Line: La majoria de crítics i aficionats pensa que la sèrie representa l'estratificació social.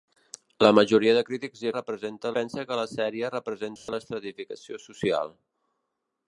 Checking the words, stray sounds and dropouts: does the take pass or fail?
fail